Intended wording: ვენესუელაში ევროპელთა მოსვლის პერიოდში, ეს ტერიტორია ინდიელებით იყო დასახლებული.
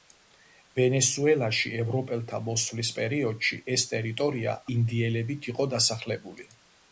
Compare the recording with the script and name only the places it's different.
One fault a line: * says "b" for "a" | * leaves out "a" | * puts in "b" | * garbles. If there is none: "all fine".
all fine